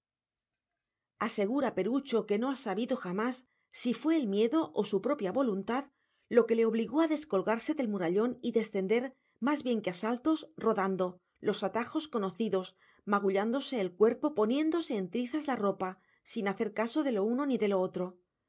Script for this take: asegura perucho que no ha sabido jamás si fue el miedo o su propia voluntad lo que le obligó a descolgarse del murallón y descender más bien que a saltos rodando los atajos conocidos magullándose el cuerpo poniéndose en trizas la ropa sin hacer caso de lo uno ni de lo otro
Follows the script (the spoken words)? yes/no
yes